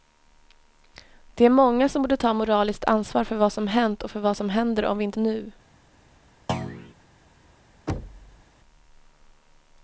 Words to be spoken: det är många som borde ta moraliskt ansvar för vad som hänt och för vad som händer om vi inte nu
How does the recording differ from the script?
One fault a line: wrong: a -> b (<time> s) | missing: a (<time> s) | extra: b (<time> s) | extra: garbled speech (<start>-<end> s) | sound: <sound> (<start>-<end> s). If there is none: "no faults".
sound: thud (6.5-6.9 s)
sound: thud (7.9-8.4 s)